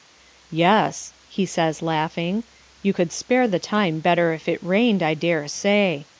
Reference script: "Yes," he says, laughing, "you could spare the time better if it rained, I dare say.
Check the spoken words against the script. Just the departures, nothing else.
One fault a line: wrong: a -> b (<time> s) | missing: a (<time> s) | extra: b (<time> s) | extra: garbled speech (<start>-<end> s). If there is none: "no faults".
no faults